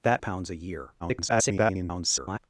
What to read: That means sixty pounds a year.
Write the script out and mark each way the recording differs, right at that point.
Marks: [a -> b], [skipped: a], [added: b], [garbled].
That [skipped: means sixty] pounds a year. [garbled]